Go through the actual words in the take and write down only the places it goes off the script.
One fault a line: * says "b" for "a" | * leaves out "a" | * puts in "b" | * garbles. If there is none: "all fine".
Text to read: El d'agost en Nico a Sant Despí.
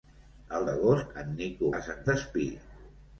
all fine